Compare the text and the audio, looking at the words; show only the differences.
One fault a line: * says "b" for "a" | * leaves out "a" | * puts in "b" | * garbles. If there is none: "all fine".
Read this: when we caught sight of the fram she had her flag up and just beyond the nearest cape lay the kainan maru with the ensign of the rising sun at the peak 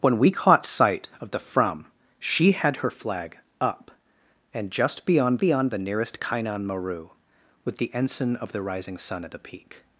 * puts in "beyond"
* leaves out "cape lay the"